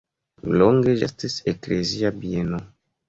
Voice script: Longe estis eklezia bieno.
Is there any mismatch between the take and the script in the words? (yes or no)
no